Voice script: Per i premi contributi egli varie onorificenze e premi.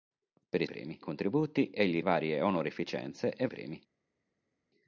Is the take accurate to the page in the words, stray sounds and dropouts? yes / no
yes